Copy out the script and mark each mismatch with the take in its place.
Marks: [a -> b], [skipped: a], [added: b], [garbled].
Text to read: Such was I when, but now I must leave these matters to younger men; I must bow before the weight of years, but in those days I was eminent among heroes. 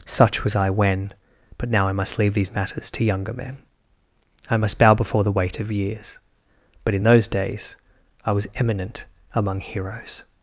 Such was I when, but now I must leave these matters to younger men; I must bow before the weight of years, but in those days I was eminent among heroes.